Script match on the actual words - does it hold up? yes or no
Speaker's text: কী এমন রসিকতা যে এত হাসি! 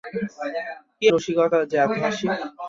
no